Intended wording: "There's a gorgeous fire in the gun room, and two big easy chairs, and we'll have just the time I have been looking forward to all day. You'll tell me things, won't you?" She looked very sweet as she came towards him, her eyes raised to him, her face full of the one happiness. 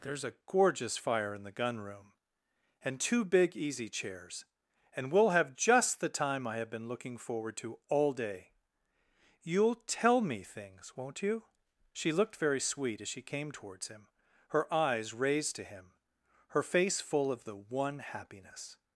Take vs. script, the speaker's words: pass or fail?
pass